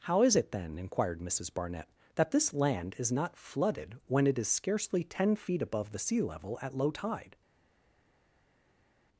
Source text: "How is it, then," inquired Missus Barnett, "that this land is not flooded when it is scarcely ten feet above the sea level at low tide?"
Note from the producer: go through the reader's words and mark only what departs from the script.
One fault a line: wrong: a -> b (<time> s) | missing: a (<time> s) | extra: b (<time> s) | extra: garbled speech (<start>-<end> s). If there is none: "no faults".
no faults